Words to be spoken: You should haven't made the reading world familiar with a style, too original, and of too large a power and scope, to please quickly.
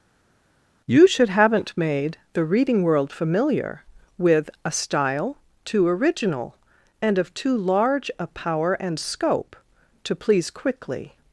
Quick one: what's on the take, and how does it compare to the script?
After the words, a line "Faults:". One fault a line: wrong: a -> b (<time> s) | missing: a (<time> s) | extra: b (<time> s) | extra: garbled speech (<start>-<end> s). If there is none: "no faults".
You should haven't made the reading world familiar with a style, too original, and of too large a power and scope, to please quickly.
Faults:
no faults